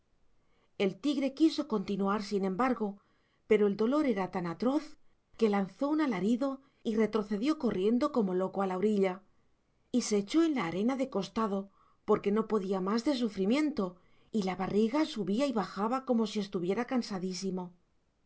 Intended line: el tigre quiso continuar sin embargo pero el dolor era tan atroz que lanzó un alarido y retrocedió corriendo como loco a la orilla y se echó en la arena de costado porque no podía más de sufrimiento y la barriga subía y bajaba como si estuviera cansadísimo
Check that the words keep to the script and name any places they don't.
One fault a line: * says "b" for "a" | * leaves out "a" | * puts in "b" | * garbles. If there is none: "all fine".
all fine